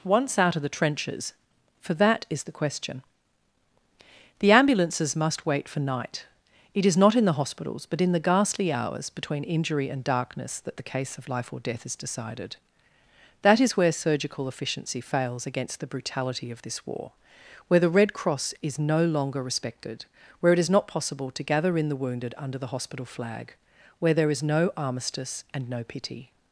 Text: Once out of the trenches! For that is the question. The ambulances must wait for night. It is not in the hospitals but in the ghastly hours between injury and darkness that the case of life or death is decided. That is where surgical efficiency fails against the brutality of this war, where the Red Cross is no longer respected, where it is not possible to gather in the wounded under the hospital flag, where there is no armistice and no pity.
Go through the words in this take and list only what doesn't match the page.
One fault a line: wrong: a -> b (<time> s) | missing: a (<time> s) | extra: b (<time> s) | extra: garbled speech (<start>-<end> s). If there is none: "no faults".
no faults